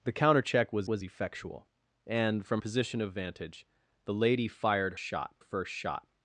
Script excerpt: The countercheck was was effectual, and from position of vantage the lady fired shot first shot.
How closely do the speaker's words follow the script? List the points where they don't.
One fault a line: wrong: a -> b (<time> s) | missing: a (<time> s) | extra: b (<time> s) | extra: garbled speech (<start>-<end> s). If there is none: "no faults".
no faults